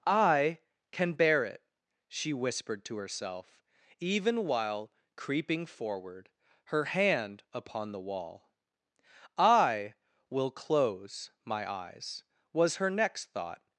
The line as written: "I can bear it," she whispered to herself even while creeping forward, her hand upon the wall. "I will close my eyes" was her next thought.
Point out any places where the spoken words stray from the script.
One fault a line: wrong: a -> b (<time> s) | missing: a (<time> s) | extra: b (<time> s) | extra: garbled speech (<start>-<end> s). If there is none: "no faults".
no faults